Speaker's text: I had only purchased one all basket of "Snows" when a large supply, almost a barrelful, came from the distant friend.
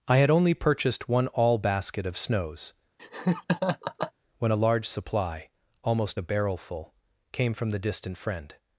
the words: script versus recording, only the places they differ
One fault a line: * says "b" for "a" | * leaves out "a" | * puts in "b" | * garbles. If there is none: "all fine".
all fine